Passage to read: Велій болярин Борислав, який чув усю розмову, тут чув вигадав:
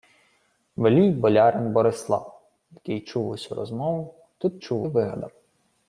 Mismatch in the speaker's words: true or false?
false